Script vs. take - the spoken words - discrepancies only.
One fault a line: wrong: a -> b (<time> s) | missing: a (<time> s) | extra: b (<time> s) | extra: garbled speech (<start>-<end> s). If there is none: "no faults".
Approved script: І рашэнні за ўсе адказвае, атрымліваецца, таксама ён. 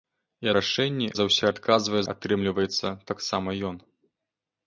no faults